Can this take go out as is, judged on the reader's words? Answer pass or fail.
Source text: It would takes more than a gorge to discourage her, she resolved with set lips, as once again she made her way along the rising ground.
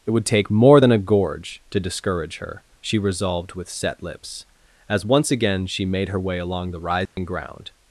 fail